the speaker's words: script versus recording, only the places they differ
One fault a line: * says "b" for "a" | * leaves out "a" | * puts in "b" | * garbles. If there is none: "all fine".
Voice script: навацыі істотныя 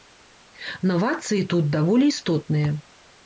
* puts in "тут даволі"